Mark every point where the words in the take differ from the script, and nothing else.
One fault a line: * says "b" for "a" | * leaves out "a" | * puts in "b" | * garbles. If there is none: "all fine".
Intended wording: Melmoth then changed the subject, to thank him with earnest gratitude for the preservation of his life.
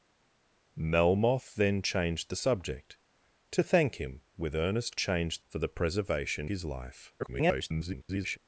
* says "changed" for "gratitude"
* leaves out "of"
* garbles